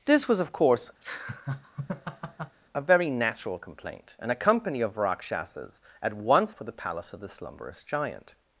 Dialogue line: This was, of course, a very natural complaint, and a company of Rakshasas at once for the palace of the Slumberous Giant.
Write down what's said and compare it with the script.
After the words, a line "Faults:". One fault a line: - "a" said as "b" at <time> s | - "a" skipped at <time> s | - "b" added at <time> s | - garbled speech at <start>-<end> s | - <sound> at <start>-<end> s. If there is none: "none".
This was, of course, a very natural complaint, and a company of Rakshasas at once for the palace of the Slumberous Giant.
Faults:
- laugh at 1.0-2.6 s